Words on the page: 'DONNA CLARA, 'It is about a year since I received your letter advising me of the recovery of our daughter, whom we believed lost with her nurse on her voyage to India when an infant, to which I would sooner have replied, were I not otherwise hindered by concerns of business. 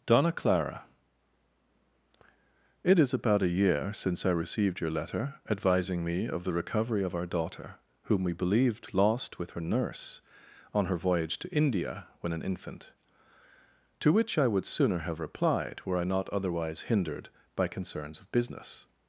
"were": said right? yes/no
yes